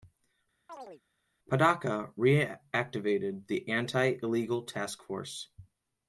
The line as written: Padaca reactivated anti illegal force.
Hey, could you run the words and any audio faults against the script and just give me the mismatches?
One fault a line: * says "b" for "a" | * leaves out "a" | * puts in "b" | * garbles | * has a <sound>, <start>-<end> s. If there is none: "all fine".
* has a chirp, 0.7-1.0 s
* puts in "the"
* puts in "task"